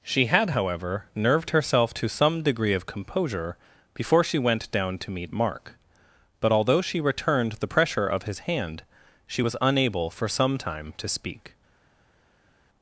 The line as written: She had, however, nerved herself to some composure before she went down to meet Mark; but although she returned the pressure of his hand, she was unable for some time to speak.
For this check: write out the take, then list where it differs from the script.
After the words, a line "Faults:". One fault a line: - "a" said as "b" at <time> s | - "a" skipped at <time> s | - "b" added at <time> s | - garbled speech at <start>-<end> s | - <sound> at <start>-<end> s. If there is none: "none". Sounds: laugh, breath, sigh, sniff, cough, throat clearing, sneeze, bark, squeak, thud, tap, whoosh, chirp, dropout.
She had, however, nerved herself to some degree of composure before she went down to meet Mark; but although she returned the pressure of his hand, she was unable for some time to speak.
Faults:
- "degree of" added at 2.4 s